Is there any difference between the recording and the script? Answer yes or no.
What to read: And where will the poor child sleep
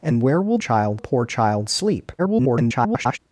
yes